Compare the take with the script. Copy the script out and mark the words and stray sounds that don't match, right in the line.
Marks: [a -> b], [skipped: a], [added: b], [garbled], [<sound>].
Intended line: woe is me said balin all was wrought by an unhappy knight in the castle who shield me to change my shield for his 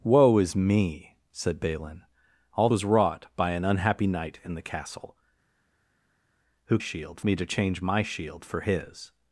woe is me said balin all was wrought by an unhappy knight in the castle who shield me to change my shield for his